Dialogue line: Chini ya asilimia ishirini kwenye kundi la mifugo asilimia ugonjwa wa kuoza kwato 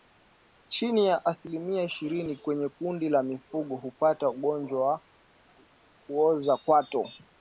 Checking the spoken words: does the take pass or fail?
fail